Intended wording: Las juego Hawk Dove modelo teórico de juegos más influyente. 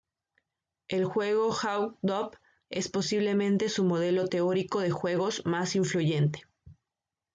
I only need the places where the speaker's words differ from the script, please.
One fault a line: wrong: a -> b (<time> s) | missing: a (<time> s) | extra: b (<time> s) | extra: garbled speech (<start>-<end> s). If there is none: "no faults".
wrong: Las -> El (0.9 s)
extra: es posiblemente su (2.7 s)